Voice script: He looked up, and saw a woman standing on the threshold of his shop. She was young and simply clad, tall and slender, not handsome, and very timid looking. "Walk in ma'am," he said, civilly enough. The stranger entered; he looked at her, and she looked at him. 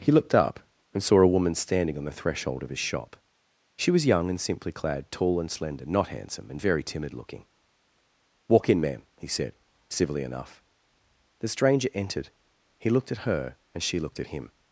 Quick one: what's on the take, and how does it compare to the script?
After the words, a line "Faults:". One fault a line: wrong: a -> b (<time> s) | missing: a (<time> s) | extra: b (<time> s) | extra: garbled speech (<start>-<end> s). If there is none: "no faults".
He looked up, and saw a woman standing on the threshold of his shop. She was young and simply clad, tall and slender, not handsome, and very timid looking. "Walk in ma'am," he said, civilly enough. The stranger entered; he looked at her, and she looked at him.
Faults:
no faults